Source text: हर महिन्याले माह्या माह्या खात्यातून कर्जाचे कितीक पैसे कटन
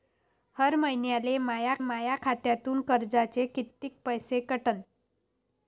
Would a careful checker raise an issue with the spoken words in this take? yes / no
no